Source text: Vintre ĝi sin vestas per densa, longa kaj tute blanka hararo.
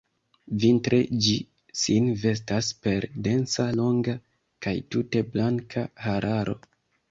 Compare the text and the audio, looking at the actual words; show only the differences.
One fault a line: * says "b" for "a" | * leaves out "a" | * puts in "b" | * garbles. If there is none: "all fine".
all fine